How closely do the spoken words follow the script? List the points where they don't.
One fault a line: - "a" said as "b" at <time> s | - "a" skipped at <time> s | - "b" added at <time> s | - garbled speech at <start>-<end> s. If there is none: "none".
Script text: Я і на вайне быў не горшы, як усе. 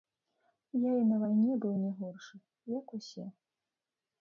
none